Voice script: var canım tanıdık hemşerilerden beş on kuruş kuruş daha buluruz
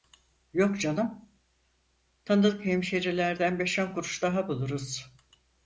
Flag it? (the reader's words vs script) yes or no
yes